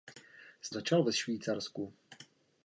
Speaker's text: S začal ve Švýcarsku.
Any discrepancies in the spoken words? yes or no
no